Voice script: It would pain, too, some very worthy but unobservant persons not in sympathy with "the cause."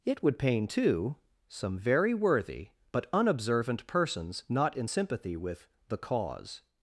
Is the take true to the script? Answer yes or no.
yes